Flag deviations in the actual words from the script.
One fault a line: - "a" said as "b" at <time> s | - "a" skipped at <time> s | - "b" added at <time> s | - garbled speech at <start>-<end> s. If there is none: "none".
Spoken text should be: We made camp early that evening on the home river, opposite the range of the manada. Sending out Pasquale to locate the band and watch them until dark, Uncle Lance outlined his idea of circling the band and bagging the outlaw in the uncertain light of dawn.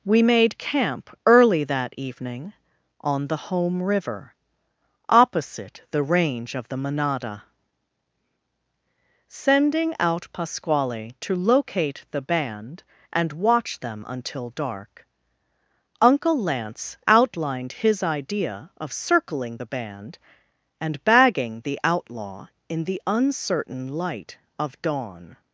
none